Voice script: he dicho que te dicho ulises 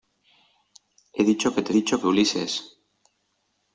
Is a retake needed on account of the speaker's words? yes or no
no